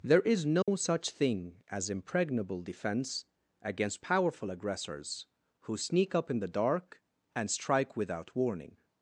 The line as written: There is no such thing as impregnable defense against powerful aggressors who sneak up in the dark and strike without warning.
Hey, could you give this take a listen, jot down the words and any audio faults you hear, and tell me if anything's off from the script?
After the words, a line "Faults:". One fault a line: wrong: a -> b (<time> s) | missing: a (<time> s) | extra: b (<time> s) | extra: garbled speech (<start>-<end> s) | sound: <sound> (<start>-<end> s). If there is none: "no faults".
There is no such thing as impregnable defense against powerful aggressors who sneak up in the dark and strike without warning.
Faults:
sound: dropout (0.6-0.7 s)